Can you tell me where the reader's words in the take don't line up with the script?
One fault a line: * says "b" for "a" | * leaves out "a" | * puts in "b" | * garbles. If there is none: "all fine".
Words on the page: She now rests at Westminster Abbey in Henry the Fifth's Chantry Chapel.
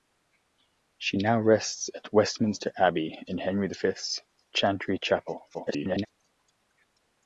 * garbles